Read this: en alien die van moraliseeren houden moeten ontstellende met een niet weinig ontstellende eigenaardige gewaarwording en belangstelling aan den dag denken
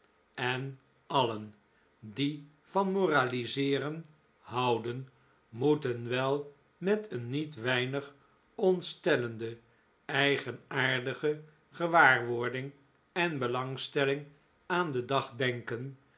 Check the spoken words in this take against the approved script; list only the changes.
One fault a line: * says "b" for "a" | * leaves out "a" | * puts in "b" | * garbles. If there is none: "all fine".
* says "wel" for "ontstellende"